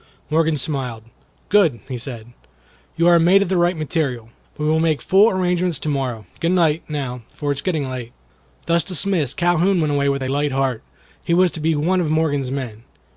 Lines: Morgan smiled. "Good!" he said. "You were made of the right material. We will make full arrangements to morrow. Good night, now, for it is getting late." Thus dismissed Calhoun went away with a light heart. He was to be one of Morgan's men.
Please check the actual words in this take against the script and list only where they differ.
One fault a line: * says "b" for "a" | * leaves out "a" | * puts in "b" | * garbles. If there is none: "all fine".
* says "are" for "were"